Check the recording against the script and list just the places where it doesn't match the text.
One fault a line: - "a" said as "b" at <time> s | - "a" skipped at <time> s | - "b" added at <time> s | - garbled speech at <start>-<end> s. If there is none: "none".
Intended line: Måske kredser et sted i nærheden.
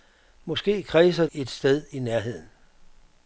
none